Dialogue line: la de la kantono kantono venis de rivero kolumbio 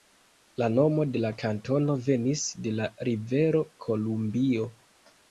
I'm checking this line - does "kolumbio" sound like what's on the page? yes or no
yes